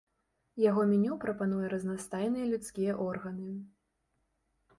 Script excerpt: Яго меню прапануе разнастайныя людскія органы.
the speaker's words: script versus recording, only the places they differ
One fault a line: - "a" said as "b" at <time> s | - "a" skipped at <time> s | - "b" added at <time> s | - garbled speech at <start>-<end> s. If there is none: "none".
none